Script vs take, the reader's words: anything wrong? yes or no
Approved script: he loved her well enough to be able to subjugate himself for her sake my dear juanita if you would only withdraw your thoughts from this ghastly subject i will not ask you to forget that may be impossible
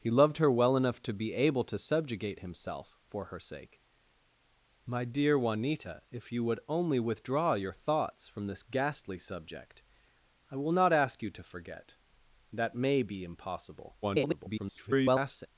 yes